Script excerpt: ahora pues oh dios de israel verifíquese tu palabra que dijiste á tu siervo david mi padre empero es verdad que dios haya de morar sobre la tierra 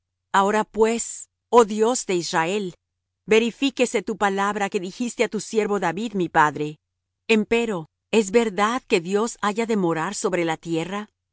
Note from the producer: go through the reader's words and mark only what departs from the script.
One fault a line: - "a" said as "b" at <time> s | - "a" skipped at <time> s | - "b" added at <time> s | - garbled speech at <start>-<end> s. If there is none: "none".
none